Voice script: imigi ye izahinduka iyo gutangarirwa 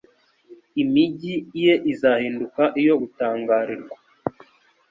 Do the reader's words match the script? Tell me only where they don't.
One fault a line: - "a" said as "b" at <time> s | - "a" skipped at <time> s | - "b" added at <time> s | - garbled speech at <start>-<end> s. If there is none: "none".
none